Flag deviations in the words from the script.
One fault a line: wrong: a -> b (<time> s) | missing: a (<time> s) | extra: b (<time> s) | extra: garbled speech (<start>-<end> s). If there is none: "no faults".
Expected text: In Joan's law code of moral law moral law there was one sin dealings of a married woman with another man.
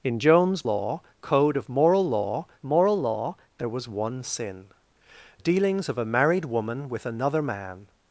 no faults